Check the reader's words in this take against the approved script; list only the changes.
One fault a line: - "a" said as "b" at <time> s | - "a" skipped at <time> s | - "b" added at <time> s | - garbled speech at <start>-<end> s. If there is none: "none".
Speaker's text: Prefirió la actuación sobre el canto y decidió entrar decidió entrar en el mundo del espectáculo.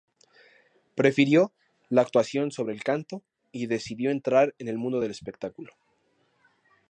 - "decidió entrar" skipped at 4.5 s